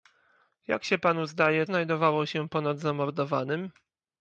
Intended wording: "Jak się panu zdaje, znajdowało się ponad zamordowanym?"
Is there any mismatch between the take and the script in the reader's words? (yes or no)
no